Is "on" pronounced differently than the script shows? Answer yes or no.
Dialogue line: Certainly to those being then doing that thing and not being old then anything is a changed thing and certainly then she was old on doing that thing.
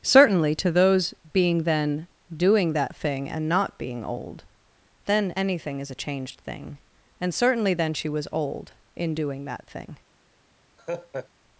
yes